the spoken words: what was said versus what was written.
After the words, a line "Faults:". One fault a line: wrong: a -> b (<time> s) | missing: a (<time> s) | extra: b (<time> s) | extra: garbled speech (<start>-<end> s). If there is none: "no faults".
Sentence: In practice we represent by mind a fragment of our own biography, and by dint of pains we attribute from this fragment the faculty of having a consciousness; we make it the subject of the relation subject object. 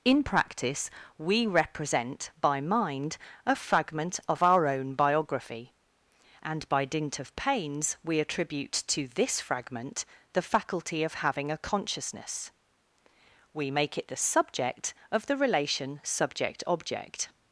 In practice we represent by mind a fragment of our own biography, and by dint of pains we attribute to this fragment the faculty of having a consciousness; we make it the subject of the relation subject object.
Faults:
wrong: from -> to (8.9 s)